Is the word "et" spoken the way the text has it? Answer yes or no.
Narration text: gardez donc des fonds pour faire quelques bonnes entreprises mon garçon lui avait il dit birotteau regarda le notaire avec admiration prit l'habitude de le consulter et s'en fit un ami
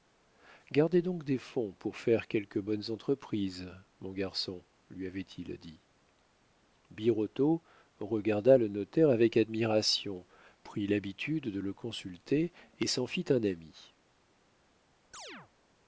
yes